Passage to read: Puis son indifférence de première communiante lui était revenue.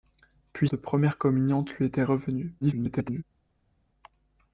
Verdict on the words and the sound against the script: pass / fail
fail